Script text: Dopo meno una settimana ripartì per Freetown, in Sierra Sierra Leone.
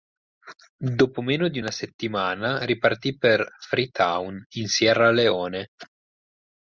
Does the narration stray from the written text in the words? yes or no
yes